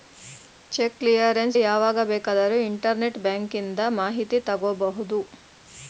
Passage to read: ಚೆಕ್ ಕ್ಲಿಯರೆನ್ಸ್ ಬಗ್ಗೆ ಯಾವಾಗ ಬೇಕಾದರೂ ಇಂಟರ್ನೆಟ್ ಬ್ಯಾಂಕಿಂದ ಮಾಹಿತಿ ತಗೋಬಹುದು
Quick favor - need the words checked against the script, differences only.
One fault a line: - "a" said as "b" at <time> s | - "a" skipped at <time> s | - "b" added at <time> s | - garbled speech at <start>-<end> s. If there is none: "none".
- "ಬಗ್ಗೆ" skipped at 1.6 s